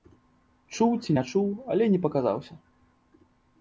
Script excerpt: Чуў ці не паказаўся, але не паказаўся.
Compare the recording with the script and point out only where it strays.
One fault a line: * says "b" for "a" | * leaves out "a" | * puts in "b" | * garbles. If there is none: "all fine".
* says "чуў" for "паказаўся"